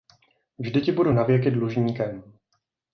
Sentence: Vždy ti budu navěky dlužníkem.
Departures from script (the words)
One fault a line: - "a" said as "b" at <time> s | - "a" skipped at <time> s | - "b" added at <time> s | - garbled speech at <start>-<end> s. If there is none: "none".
none